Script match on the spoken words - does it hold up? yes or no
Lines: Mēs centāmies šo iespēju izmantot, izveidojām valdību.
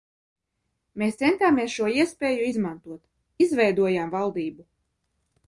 yes